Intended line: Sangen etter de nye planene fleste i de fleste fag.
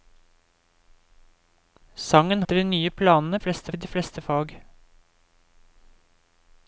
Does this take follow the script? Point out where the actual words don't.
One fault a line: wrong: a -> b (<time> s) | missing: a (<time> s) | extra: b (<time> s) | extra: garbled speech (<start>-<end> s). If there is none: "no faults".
no faults